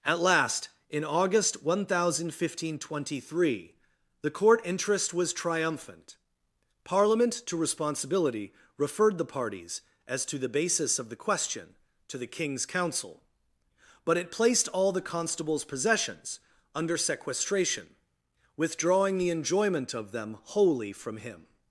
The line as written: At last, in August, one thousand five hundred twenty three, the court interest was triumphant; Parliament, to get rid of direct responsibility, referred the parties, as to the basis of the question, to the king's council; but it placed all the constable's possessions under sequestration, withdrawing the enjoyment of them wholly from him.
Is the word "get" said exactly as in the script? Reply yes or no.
no